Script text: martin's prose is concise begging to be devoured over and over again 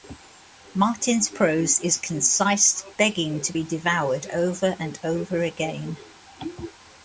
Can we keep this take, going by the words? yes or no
yes